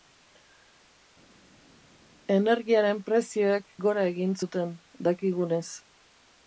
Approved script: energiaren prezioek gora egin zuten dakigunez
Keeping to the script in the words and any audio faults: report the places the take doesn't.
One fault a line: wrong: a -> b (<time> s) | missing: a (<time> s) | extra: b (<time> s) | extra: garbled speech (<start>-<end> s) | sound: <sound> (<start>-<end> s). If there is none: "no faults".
no faults